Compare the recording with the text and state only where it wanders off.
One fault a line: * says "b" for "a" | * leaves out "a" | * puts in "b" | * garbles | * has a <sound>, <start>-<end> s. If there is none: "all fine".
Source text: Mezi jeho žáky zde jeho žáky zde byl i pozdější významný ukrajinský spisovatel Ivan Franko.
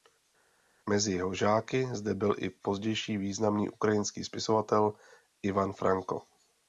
* leaves out "jeho žáky zde"